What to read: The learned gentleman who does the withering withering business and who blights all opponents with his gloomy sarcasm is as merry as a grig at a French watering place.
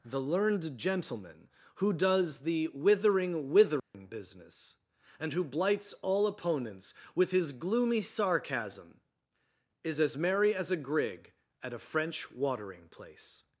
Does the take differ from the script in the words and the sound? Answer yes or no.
yes